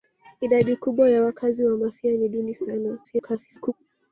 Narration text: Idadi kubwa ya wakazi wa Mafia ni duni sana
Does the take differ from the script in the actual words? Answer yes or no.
yes